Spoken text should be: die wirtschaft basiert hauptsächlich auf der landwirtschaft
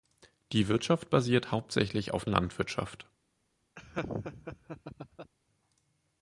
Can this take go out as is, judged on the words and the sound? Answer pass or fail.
fail